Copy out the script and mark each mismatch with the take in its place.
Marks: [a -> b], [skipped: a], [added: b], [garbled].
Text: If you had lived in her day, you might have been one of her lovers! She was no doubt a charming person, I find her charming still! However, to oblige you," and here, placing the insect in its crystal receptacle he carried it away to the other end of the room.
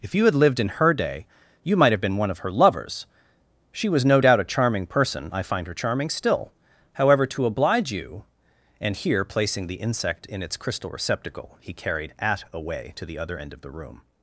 If you had lived in her day, you might have been one of her lovers! She was no doubt a charming person, I find her charming still! However, to oblige you," and here, placing the insect in its crystal receptacle he carried [it -> at] away to the other end of the room.